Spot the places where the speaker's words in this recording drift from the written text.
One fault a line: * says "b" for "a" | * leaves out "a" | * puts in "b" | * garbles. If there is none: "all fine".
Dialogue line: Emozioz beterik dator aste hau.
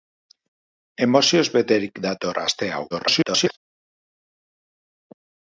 * garbles